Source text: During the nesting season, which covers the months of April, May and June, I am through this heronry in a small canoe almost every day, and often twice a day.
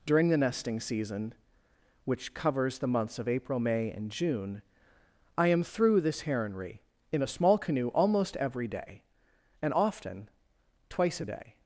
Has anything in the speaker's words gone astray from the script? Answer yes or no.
no